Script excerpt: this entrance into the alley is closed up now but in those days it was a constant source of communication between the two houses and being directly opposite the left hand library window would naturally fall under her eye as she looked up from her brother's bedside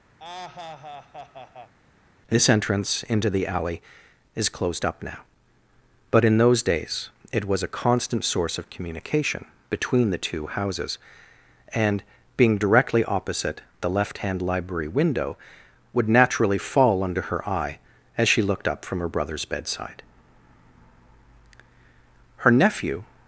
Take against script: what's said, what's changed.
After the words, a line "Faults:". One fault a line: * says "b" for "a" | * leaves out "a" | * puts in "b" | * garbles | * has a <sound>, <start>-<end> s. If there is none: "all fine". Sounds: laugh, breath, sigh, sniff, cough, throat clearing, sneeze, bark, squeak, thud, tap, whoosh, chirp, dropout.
this entrance into the alley is closed up now but in those days it was a constant source of communication between the two houses and being directly opposite the left hand library window would naturally fall under her eye as she looked up from her brother's bedside her nephew
Faults:
* has a laugh, 0.2-1.7 s
* puts in "her nephew"